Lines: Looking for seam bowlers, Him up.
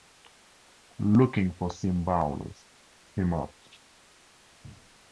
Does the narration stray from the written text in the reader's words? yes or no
no